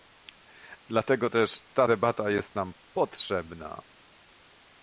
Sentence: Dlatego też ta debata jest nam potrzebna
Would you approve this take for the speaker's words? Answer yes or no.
yes